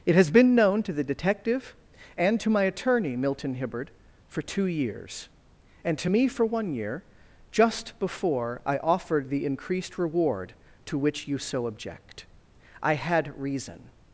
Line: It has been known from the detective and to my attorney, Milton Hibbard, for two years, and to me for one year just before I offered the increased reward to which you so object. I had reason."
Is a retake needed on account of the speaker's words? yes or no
yes